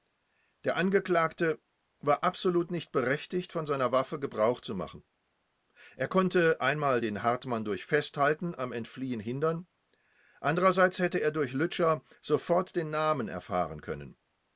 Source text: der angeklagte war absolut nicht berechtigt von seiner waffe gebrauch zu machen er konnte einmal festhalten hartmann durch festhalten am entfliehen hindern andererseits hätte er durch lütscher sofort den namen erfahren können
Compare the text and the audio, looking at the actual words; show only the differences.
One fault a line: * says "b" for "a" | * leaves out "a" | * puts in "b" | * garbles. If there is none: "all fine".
* says "den" for "festhalten"